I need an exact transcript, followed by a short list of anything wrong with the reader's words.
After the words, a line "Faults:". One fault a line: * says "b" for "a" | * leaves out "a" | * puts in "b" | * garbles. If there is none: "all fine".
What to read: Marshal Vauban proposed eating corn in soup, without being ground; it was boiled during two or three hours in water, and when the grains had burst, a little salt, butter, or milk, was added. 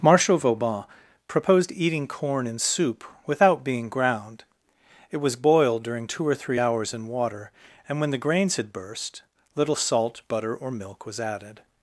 Marshal Vauban proposed eating corn in soup, without being ground; it was boiled during two or three hours in water, and when the grains had burst, little salt, butter, or milk, was added.
Faults:
* leaves out "a"